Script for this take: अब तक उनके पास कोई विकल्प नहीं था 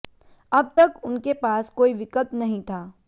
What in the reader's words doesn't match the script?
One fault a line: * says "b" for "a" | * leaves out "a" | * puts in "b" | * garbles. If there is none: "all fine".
all fine